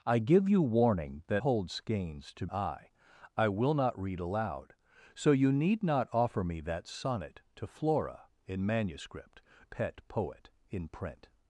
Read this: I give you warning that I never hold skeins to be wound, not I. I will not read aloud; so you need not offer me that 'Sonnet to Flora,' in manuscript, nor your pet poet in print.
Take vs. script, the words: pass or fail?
fail